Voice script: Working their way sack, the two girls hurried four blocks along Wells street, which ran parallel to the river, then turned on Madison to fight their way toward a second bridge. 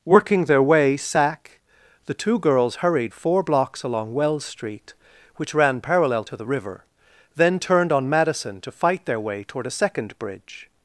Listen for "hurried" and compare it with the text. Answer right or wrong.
right